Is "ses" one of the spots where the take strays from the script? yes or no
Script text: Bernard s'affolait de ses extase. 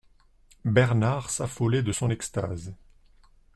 yes